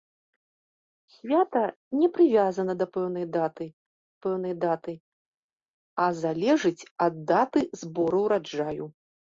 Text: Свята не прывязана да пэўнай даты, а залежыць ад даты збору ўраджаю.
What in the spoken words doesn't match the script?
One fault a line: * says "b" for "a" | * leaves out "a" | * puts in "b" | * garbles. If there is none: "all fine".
* puts in "пэўнай даты"